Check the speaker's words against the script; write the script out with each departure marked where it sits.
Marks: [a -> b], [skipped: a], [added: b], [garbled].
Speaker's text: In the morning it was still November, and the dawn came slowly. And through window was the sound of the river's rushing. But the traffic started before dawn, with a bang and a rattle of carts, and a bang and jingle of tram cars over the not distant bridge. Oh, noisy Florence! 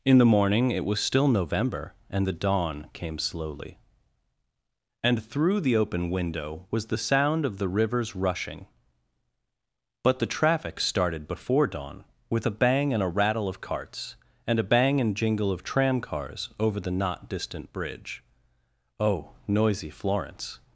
In the morning it was still November, and the dawn came slowly. And through [added: the open] window was the sound of the river's rushing. But the traffic started before dawn, with a bang and a rattle of carts, and a bang and jingle of tram cars over the not distant bridge. Oh, noisy Florence!